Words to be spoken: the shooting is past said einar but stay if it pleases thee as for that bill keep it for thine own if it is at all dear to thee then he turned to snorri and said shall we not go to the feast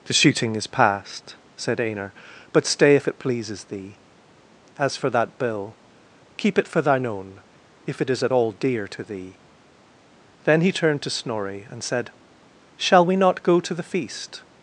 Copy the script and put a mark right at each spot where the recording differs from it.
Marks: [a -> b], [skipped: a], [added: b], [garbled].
the shooting is past said einar but stay if it pleases thee as for that bill keep it for thine own if it is at all dear to thee then he turned to snorri and said shall we not go to the feast